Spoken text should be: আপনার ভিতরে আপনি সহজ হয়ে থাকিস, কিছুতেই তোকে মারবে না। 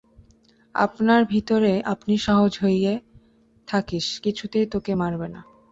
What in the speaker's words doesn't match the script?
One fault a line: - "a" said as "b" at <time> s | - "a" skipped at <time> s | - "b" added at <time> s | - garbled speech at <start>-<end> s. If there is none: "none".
none